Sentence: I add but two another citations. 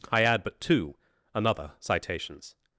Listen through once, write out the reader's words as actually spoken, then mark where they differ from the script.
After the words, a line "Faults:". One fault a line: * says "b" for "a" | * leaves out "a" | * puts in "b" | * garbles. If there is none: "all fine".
I add but two another citations.
Faults:
all fine